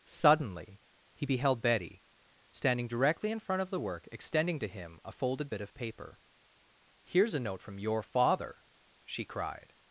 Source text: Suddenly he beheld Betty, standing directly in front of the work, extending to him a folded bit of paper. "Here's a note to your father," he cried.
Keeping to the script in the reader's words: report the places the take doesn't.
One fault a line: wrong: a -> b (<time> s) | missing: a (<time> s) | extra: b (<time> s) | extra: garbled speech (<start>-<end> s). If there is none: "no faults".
wrong: to -> from (7.6 s)
wrong: he -> she (9.0 s)